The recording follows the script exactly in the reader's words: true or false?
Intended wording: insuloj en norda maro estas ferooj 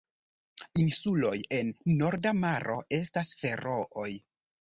true